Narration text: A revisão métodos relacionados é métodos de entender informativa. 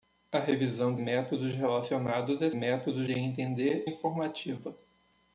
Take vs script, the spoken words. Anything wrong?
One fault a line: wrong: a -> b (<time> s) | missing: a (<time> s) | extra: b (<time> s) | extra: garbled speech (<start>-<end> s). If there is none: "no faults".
no faults